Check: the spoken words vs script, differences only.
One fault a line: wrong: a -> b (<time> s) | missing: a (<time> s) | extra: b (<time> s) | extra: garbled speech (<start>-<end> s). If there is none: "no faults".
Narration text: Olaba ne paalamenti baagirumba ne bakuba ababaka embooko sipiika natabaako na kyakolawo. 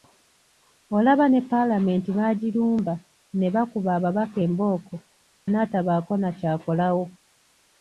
missing: sipiika (4.9 s)